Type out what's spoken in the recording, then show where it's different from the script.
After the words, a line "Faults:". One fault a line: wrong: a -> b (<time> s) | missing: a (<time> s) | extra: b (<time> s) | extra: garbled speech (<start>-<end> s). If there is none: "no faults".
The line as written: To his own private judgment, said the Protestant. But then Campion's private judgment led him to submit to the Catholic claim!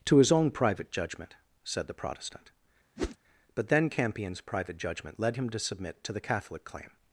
To his own private judgment, said the Protestant. But then Campion's private judgment led him to submit to the Catholic claim!
Faults:
no faults